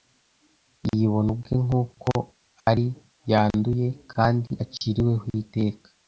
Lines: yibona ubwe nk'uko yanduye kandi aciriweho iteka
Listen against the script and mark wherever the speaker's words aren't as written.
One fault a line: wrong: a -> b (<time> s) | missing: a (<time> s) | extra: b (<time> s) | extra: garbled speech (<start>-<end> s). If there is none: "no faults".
extra: ari (2.7 s)